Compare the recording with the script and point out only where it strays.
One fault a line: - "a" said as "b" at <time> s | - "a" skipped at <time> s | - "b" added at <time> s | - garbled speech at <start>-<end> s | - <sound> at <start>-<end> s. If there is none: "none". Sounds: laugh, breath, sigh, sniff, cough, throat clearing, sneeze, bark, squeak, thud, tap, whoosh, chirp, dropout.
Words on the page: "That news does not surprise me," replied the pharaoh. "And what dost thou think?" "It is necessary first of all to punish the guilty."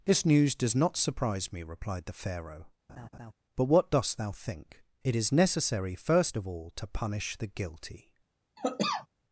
- "That" said as "This" at 0.1 s
- laugh at 2.9-3.3 s
- "And" said as "But" at 3.6 s
- cough at 8.6-9.1 s